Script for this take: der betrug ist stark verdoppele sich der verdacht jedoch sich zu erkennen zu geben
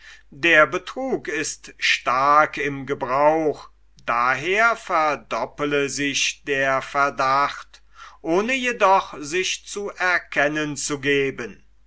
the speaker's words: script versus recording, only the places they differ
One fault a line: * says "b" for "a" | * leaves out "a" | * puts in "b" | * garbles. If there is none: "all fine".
* puts in "im gebrauch daher"
* puts in "ohne"